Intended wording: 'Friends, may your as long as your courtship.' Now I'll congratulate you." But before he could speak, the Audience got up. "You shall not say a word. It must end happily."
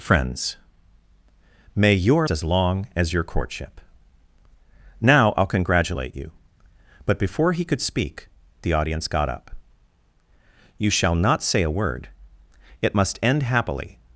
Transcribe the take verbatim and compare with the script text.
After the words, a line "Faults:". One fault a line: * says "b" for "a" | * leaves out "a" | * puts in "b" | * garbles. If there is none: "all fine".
'Friends, may your as long as your courtship.' Now I'll congratulate you." But before he could speak, the Audience got up. "You shall not say a word. It must end happily."
Faults:
all fine